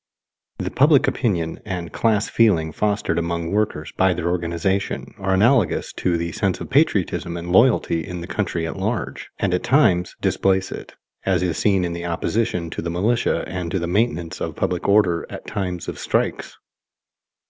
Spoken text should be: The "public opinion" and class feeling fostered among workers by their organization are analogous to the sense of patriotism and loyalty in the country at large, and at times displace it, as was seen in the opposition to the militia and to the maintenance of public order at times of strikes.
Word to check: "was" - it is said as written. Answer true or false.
false